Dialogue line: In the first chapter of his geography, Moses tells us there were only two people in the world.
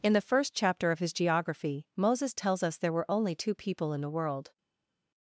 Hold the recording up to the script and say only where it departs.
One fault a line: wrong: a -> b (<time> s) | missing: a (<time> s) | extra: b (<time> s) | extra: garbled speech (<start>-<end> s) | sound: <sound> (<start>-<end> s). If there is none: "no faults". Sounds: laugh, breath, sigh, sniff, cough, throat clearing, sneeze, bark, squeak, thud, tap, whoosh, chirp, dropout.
no faults